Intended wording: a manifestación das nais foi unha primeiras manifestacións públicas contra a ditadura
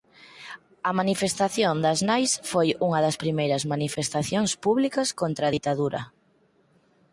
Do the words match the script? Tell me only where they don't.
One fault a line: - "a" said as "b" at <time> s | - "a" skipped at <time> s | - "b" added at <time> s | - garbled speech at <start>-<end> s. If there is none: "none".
- "das" added at 3.0 s